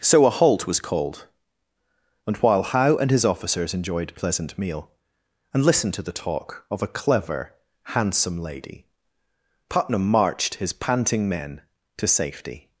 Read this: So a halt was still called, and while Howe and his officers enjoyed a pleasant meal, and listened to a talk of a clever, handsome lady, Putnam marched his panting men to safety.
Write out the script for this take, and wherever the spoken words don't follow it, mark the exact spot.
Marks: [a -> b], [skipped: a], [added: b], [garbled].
So a halt was [skipped: still] called, and while Howe and his officers enjoyed a pleasant meal, and listened to [a -> the] talk of a clever, handsome lady, Putnam marched his panting men to safety.